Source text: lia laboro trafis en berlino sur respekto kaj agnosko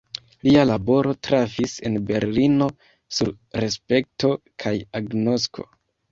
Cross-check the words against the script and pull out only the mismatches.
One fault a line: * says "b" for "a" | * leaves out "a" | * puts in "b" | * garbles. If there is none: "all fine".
all fine